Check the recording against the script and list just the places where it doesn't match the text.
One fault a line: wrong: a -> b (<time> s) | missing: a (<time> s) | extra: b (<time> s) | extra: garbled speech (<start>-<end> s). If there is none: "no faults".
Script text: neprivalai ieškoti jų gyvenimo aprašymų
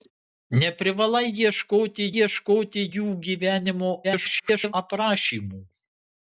extra: ieškoti (2.2 s)
extra: garbled speech (4.0-4.7 s)